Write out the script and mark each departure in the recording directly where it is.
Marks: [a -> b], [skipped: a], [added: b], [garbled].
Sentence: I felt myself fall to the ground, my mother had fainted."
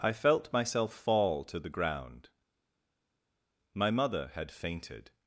I felt myself fall to the ground, my mother had fainted."